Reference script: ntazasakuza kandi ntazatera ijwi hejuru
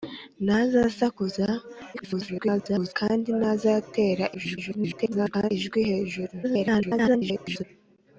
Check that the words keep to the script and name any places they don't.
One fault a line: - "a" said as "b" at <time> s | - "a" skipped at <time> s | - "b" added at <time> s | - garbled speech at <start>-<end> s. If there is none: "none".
- garbled speech at 1.9-2.9 s
- garbled speech at 4.3-5.5 s
- garbled speech at 6.4-7.6 s